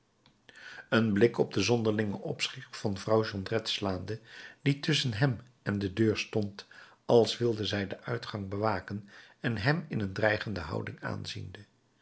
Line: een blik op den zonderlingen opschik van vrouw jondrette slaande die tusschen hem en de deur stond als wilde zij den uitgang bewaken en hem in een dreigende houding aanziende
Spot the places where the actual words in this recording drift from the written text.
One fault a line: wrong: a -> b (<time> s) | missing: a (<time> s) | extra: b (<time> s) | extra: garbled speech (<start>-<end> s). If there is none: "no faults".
no faults